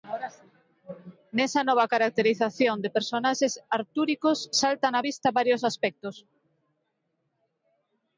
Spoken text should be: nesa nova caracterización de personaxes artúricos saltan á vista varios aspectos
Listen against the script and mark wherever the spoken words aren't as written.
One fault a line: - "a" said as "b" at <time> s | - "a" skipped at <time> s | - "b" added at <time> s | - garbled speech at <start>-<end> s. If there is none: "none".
none